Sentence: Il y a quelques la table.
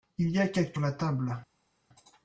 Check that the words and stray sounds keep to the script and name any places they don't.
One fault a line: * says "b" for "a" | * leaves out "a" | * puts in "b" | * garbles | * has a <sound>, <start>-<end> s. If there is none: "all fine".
all fine